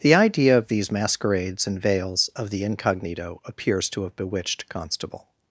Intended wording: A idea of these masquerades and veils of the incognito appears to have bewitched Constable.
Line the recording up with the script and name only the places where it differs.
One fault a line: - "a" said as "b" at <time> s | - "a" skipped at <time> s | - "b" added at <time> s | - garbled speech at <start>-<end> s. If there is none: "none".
- "A" said as "The" at 0.0 s